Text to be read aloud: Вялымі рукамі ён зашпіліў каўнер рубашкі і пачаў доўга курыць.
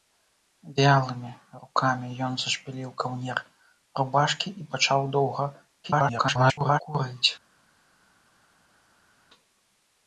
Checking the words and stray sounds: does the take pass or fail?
fail